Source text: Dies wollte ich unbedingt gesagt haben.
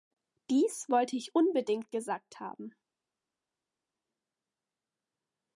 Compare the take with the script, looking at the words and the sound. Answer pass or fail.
pass